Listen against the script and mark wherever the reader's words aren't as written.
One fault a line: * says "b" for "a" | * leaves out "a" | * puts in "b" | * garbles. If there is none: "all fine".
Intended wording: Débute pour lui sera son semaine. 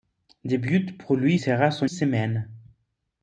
all fine